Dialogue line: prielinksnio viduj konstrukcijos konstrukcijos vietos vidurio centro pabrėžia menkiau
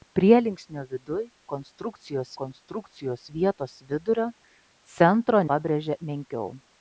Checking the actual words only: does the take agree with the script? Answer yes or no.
yes